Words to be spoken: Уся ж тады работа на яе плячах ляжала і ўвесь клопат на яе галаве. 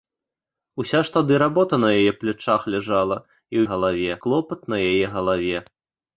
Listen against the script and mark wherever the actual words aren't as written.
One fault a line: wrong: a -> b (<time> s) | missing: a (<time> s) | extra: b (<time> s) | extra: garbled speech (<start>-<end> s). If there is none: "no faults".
wrong: ўвесь -> галаве (3.7 s)